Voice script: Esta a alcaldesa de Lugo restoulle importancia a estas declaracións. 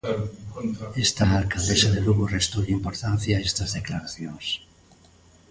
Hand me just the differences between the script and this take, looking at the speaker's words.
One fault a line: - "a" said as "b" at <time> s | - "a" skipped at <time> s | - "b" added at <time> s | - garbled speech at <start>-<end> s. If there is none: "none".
none